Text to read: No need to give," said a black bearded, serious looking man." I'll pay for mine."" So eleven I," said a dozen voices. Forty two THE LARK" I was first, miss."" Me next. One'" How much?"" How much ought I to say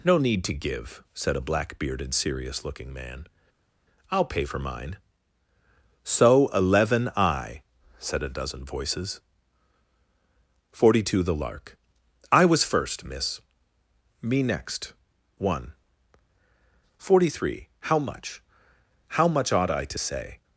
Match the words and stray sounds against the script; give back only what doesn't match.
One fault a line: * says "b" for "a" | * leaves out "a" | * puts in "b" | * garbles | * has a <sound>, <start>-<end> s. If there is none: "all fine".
* puts in "forty three"